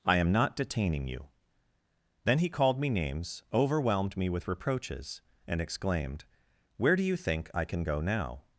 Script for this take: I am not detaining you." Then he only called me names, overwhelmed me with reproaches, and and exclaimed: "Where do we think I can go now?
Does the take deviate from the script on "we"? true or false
true